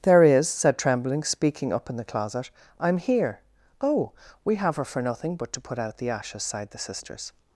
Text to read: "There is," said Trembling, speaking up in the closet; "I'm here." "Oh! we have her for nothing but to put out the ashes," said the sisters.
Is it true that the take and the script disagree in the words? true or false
true